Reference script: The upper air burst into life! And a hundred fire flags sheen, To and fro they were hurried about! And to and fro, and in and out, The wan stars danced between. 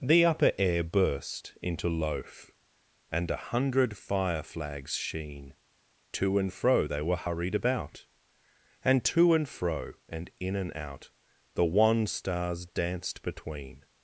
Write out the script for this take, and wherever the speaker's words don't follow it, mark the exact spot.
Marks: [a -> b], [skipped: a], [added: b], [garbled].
The upper air burst into [life! -> loaf] And a hundred fire flags sheen, To and fro they were hurried about! And to and fro, and in and out, The wan stars danced between.